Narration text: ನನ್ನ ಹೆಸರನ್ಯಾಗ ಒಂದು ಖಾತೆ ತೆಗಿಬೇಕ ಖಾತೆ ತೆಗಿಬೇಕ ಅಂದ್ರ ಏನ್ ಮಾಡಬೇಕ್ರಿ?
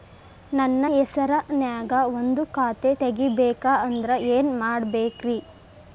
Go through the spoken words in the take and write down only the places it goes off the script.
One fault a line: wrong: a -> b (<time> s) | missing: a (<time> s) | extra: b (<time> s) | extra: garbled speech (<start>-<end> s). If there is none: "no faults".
missing: ಖಾತೆ ತೆಗಿಬೇಕ (3.7 s)